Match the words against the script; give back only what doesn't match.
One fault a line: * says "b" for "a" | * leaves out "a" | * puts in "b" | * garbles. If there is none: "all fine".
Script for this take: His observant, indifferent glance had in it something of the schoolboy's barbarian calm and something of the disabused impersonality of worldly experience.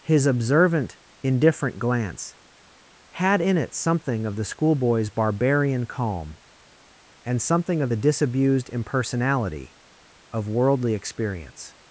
all fine